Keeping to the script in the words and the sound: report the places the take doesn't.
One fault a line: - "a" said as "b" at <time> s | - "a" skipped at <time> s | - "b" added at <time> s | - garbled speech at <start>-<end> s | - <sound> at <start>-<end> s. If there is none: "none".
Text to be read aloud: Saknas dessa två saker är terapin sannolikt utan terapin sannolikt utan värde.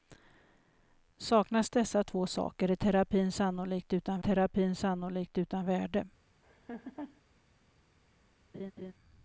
- laugh at 6.4-7.2 s
- laugh at 8.5-8.9 s